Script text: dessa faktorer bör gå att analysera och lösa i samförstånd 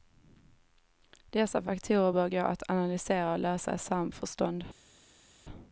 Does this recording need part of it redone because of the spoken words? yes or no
no